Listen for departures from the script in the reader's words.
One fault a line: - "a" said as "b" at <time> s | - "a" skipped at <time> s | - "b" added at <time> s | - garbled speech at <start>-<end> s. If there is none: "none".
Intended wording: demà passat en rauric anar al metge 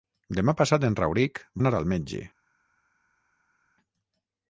none